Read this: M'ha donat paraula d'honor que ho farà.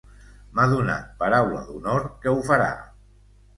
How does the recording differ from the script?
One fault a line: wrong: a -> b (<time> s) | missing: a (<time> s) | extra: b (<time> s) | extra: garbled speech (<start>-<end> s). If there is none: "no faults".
no faults